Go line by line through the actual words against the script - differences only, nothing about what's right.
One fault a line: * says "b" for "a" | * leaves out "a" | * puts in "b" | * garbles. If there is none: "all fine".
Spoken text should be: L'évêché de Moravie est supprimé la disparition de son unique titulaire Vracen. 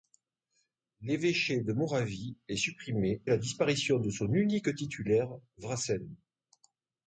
all fine